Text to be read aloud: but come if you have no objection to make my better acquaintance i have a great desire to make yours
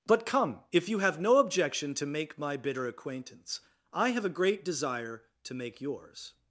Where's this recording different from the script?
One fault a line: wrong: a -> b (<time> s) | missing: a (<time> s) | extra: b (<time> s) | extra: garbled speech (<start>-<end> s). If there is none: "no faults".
wrong: better -> bitter (2.6 s)